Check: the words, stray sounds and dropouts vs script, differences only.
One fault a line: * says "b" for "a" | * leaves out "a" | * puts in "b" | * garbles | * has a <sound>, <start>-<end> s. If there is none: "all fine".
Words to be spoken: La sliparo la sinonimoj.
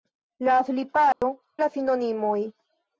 * has a dropout, 1.1-1.2 s